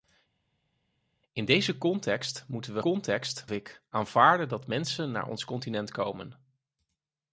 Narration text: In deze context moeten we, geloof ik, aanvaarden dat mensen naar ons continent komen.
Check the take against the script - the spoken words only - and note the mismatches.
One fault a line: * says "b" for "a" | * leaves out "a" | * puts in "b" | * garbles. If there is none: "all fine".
* says "context" for "geloof"